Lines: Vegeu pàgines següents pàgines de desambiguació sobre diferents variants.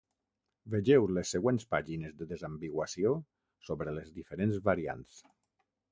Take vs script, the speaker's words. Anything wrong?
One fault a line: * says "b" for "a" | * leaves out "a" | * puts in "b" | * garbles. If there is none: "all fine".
* says "les" for "pàgines"
* puts in "les"